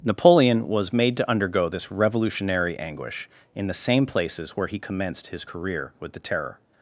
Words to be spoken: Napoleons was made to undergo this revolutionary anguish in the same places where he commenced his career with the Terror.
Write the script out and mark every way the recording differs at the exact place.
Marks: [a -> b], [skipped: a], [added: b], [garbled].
[Napoleons -> Napoleon] was made to undergo this revolutionary anguish in the same places where he commenced his career with the Terror.